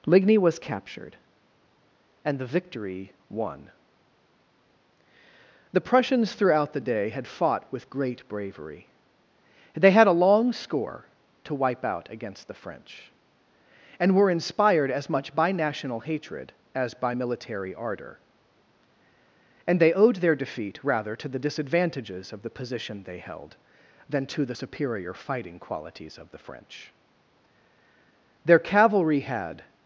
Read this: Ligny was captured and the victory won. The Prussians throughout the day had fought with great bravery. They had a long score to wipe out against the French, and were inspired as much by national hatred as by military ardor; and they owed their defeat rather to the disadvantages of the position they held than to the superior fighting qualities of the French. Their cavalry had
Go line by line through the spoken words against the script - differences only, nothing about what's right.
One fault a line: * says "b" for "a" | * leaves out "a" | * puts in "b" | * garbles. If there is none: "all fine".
all fine